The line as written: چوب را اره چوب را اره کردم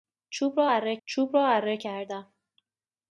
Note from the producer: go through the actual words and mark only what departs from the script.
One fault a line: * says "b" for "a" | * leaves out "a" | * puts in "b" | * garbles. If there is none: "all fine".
all fine